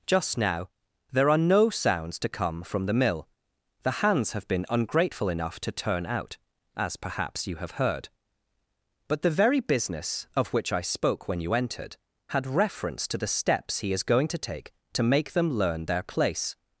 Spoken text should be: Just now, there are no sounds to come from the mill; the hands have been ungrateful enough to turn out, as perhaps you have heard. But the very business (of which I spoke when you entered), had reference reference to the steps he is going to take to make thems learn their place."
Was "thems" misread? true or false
true